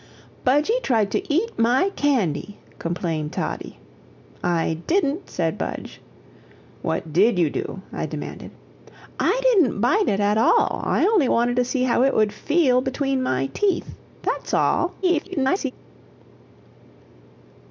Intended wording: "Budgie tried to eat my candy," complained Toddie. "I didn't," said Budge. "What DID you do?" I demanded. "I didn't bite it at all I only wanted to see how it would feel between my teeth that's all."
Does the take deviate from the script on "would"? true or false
false